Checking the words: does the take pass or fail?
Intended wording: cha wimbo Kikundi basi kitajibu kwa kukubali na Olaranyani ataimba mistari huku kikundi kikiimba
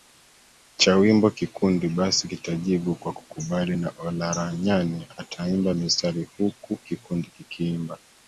pass